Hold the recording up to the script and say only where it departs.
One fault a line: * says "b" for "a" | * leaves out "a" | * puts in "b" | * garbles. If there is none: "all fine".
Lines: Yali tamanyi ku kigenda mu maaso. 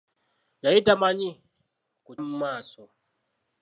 * leaves out "kigenda"